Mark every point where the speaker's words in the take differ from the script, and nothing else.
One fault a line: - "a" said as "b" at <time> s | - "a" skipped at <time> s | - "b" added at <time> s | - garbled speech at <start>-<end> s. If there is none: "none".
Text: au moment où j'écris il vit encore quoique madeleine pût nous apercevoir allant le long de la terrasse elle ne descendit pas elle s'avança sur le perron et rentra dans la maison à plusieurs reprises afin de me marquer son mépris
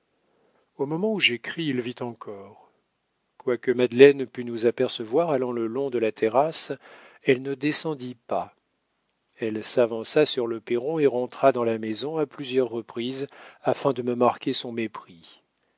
none